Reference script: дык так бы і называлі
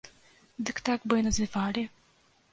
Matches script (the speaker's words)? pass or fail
pass